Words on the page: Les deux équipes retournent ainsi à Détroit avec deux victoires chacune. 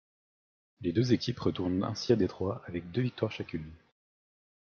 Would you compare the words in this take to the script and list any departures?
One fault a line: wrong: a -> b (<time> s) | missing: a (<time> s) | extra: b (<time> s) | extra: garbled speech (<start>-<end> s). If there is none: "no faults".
no faults